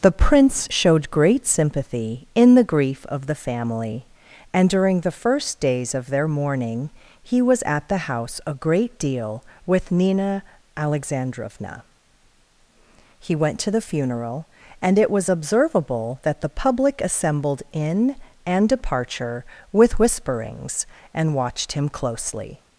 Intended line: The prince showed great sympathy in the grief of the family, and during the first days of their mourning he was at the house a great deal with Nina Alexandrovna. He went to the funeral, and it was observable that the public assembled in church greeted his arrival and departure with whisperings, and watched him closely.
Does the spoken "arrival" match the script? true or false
false